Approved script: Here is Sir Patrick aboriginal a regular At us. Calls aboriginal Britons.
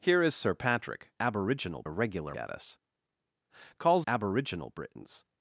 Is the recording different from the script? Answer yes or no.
no